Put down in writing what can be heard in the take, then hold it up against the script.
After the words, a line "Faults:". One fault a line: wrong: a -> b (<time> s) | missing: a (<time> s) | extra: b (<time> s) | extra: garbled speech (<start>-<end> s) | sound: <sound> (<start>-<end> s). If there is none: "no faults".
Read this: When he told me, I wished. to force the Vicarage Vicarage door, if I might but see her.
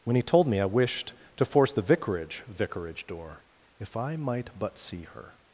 When he told me, I wished. to force the Vicarage Vicarage door, if I might but see her.
Faults:
no faults